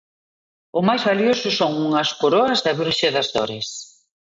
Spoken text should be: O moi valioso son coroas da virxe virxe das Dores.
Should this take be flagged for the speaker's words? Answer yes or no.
yes